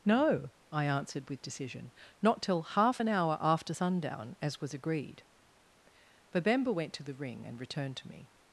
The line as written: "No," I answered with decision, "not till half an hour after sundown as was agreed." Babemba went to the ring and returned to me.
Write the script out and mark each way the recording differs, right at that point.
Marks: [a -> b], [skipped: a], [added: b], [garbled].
"No," I answered with decision, "not till half an hour after sundown as was agreed." Babemba went to the ring and returned to me.